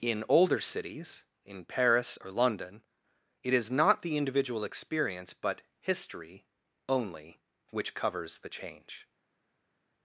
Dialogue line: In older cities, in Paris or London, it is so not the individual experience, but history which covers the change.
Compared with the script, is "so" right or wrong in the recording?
wrong